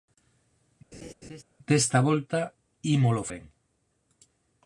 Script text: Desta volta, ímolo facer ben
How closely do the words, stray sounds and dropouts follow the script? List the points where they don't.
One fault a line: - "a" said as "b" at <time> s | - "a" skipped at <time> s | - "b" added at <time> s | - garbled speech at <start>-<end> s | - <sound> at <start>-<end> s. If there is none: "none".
- laugh at 0.9-1.4 s
- "facer" skipped at 3.2 s